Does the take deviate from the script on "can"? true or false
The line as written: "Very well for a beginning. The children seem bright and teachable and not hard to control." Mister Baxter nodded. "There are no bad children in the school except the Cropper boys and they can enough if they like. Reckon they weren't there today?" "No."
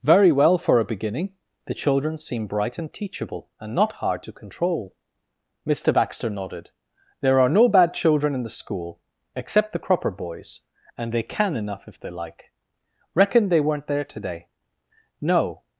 false